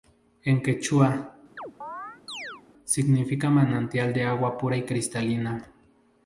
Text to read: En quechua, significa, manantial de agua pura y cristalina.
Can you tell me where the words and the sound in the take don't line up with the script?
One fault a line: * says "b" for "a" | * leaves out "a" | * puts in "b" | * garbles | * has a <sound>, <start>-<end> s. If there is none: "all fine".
* has a chirp, 1.6-2.6 s